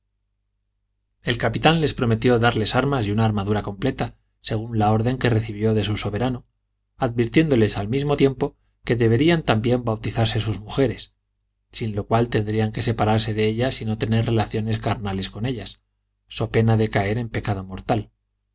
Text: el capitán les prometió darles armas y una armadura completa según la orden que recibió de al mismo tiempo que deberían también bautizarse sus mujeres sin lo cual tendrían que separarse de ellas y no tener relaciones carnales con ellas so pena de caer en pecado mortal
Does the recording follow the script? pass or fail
fail